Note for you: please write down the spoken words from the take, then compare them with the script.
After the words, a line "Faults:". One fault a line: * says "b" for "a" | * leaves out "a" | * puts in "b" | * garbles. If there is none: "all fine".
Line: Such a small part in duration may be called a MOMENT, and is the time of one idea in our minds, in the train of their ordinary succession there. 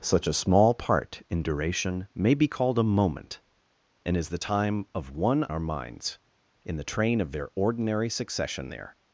Such a small part in duration may be called a MOMENT, and is the time of one our minds, in the train of their ordinary succession there.
Faults:
* leaves out "idea in"